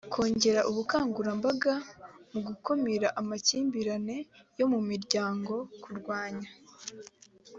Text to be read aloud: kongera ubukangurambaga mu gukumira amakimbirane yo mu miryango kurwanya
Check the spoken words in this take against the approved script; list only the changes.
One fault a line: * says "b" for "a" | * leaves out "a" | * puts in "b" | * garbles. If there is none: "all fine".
all fine